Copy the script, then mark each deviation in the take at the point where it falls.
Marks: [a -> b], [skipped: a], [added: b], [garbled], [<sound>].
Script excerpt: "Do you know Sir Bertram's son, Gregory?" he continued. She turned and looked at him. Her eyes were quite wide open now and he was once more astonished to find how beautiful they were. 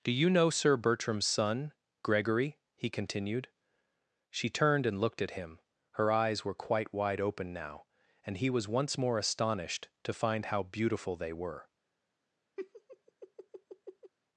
"Do you know Sir Bertram's son, Gregory?" he continued. She turned and looked at him. Her eyes were quite wide open now and he was once more astonished to find how beautiful they were. [laugh]